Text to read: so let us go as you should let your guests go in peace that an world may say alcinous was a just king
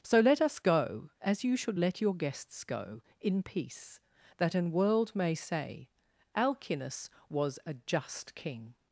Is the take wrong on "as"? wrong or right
right